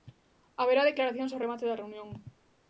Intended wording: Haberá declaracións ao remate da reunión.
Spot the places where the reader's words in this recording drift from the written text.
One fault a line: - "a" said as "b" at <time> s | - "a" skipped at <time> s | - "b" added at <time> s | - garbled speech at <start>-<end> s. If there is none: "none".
none